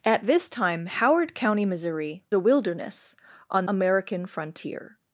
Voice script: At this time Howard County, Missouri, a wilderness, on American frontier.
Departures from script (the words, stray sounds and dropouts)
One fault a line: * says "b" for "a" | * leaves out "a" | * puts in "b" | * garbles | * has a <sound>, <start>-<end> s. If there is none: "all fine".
all fine